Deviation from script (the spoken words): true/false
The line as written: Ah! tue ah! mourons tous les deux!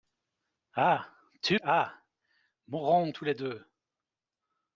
false